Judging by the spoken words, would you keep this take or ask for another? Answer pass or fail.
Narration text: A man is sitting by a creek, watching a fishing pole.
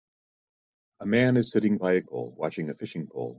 fail